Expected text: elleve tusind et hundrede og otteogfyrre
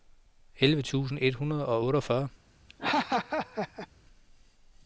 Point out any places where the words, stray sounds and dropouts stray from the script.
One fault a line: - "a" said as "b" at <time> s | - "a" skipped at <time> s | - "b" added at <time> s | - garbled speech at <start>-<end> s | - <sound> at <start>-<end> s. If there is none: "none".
- laugh at 2.7-3.9 s